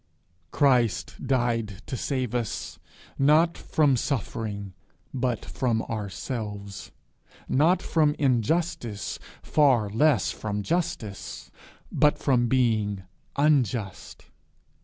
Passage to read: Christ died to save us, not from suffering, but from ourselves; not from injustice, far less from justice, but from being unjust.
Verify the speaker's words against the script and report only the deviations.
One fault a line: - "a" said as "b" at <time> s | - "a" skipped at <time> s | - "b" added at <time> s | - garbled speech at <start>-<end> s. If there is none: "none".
none